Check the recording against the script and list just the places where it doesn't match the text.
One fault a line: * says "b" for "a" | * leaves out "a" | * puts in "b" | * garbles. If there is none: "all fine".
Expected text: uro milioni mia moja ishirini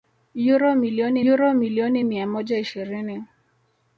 * puts in "uro milioni"